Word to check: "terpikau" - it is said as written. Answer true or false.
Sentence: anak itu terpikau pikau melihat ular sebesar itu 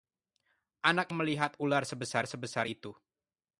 false